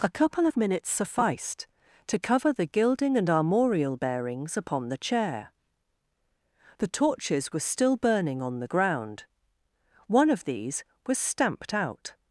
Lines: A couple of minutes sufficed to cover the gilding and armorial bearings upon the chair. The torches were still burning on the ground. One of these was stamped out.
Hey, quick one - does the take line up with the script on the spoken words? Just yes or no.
yes